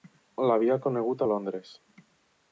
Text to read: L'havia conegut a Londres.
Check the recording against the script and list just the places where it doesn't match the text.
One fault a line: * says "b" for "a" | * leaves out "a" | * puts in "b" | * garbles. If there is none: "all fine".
all fine